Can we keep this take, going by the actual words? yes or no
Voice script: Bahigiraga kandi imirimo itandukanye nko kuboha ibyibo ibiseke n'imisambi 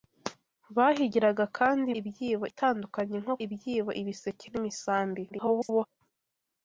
no